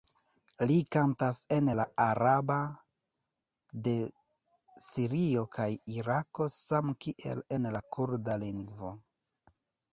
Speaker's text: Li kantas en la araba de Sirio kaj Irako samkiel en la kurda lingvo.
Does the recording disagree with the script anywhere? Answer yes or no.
no